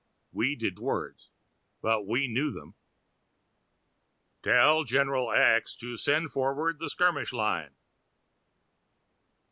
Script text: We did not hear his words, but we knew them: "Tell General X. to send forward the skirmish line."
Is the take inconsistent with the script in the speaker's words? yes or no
yes